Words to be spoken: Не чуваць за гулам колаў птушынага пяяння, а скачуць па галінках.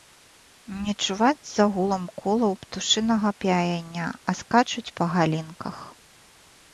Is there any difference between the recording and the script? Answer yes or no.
no